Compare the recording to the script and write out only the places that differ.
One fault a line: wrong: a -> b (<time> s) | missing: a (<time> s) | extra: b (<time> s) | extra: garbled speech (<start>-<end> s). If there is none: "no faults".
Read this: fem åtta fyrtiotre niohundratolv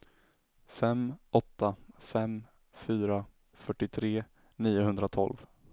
extra: fem fyra (2.0 s)